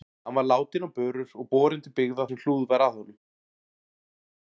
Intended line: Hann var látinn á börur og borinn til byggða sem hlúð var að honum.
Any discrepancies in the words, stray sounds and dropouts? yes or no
no